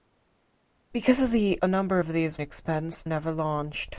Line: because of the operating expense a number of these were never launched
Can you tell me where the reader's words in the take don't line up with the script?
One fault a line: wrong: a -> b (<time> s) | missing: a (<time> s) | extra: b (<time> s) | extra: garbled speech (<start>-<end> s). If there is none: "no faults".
missing: operating expense (1.6 s)
wrong: were -> expense (2.4 s)